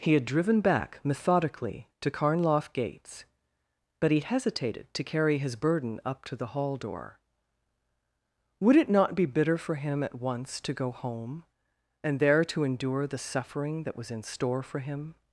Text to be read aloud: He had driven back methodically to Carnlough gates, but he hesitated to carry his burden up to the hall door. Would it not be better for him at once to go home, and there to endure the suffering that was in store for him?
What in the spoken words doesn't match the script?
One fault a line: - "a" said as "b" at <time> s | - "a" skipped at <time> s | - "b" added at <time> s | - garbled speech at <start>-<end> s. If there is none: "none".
- "better" said as "bitter" at 9.2 s